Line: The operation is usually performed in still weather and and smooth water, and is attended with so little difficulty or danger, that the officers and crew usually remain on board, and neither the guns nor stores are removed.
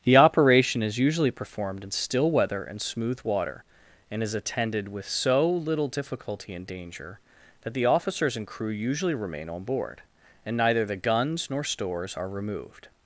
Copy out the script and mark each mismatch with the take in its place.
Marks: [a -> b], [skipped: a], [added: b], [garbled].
The operation is usually performed in still weather and [skipped: and] smooth water, and is attended with so little difficulty [or -> and] danger, that the officers and crew usually remain on board, and neither the guns nor stores are removed.